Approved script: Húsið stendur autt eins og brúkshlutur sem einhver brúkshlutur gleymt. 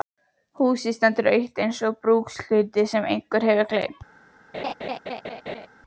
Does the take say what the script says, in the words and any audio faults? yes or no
no